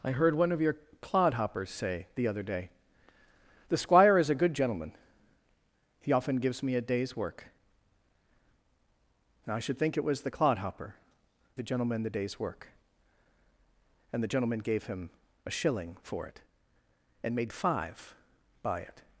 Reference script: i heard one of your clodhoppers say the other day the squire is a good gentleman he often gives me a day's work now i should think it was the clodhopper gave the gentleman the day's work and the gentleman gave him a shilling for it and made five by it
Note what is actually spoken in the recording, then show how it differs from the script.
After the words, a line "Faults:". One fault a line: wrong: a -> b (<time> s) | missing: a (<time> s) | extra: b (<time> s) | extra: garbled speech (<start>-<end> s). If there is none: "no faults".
i heard one of your clodhoppers say the other day the squire is a good gentleman he often gives me a day's work now i should think it was the clodhopper the gentleman the day's work and the gentleman gave him a shilling for it and made five by it
Faults:
missing: gave (10.9 s)